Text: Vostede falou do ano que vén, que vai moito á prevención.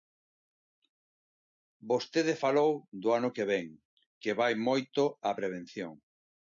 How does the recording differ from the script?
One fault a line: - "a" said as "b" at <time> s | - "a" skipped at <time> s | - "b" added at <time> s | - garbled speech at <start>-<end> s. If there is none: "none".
none